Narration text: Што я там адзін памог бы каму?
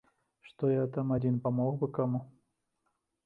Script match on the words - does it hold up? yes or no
yes